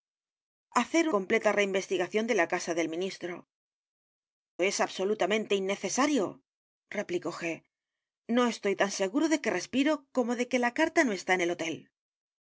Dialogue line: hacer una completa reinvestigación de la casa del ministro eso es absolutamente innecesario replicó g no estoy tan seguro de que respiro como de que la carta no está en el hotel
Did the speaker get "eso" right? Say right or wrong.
wrong